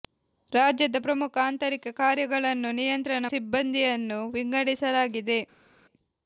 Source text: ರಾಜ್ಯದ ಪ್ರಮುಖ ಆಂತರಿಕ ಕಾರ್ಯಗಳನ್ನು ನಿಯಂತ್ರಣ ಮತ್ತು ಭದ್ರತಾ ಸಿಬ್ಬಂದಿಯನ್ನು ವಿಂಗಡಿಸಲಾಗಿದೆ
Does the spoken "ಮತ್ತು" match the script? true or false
false